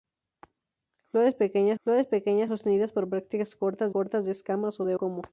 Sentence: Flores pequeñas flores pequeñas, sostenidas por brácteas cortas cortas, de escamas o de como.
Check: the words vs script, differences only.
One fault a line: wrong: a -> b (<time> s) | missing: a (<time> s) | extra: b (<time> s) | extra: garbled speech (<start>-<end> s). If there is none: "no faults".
no faults